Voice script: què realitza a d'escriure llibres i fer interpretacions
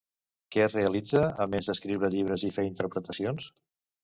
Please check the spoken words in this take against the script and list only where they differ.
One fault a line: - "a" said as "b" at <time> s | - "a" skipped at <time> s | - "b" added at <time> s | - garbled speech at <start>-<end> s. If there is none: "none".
- "més" added at 1.6 s